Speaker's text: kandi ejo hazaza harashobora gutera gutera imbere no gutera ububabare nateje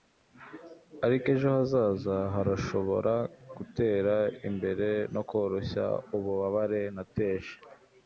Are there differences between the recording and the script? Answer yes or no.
yes